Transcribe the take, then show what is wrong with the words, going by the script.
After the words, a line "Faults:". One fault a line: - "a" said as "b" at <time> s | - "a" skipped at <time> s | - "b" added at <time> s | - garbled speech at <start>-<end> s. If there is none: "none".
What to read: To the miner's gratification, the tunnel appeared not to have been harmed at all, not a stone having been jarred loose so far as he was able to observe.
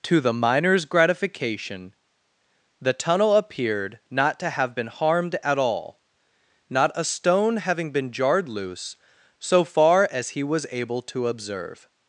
To the miner's gratification, the tunnel appeared not to have been harmed at all, not a stone having been jarred loose so far as he was able to observe.
Faults:
none